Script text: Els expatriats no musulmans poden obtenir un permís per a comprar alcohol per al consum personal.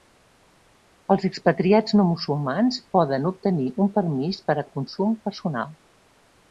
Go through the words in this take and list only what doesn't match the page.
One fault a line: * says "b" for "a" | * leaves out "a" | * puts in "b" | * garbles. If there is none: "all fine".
* leaves out "comprar alcohol per"